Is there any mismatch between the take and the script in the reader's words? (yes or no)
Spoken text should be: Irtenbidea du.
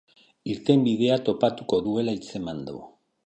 yes